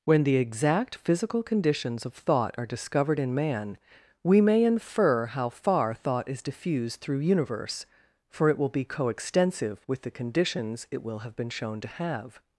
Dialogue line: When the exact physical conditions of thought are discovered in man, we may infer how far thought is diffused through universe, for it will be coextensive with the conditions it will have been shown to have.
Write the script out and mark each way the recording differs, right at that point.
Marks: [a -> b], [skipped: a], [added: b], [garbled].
When the exact physical conditions of thought are discovered in man, we may infer how far thought is diffused through universe, for it will be coextensive with the conditions it will have been shown to have.